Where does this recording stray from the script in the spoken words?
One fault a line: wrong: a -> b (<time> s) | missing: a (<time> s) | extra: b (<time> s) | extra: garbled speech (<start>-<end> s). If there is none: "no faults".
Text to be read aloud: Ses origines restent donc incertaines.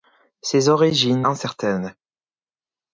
missing: restent donc (1.3 s)